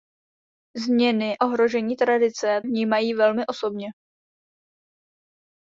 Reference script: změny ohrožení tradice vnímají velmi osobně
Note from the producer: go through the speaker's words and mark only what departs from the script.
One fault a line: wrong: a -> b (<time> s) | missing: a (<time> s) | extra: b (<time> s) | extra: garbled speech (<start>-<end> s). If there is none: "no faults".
no faults